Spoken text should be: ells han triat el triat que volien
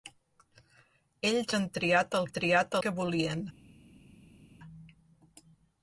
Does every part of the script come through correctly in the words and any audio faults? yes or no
yes